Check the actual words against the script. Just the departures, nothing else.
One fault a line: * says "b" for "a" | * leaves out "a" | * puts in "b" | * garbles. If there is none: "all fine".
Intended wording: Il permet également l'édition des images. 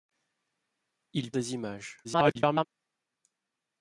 * leaves out "permet également l'édition"
* garbles